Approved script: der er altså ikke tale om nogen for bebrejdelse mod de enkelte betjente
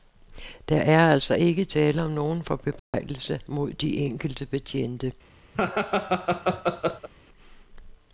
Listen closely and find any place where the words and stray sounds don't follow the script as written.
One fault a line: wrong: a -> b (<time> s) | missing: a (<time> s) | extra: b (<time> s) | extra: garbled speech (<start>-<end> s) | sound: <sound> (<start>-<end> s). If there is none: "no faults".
sound: dropout (2.8-2.9 s)
sound: laugh (5.5-7.1 s)